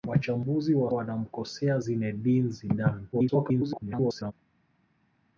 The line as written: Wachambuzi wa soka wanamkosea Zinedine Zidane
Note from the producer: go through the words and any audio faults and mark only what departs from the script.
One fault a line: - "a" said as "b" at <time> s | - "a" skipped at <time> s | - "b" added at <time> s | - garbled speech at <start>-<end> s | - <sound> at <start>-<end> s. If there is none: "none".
- "soka" skipped at 0.9 s
- garbled speech at 3.1-4.3 s